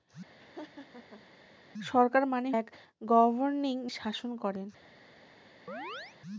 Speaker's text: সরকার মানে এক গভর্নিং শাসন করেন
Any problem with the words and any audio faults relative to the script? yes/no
yes